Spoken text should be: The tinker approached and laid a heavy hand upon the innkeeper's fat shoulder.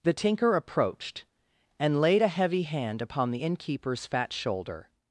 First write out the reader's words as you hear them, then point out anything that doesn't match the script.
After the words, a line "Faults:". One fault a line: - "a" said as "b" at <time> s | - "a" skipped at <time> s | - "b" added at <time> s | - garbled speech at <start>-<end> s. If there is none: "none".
The tinker approached and laid a heavy hand upon the innkeeper's fat shoulder.
Faults:
none